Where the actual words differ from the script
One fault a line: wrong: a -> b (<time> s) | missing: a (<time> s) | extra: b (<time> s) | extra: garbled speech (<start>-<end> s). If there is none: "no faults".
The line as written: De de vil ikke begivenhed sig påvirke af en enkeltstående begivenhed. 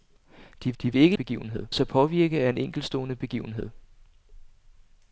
no faults